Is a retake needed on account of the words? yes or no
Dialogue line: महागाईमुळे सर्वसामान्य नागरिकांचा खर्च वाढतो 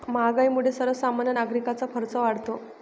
no